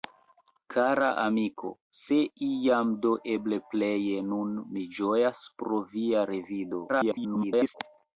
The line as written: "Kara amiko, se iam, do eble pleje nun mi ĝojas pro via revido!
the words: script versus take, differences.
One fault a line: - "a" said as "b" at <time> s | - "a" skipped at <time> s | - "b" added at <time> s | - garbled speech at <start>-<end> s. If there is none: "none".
- garbled speech at 6.9-7.8 s